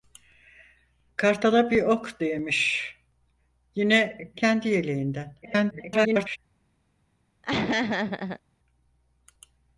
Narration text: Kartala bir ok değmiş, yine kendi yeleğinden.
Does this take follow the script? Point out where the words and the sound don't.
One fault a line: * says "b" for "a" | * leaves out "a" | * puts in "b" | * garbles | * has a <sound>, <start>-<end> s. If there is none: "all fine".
* garbles
* has a laugh, 7.4-8.4 s